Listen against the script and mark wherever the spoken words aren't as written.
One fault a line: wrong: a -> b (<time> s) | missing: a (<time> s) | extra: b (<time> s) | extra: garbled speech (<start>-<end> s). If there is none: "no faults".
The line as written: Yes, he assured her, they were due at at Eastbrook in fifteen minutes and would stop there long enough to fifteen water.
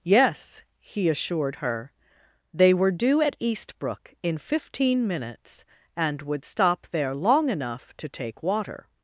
missing: at (3.4 s)
wrong: fifteen -> take (8.1 s)